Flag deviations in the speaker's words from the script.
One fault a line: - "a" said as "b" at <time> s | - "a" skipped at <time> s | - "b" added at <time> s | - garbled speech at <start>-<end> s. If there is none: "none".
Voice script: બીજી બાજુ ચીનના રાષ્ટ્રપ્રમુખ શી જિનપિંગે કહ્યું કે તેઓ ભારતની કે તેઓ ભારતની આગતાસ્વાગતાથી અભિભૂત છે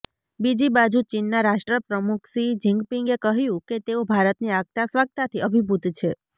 - "કે તેઓ ભારતની" skipped at 4.5 s